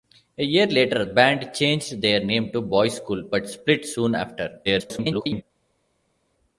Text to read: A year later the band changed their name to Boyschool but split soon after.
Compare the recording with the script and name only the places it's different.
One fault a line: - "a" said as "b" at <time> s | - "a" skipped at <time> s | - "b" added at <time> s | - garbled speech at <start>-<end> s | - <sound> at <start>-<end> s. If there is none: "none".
- "the" skipped at 1.1 s
- garbled speech at 4.6-5.4 s